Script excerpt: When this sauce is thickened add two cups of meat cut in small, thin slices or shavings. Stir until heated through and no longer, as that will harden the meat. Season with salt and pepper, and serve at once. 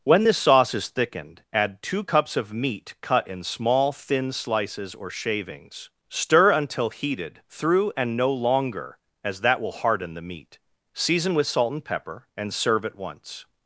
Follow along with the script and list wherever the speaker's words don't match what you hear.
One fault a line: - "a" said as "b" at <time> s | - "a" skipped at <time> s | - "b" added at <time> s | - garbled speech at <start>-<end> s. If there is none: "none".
none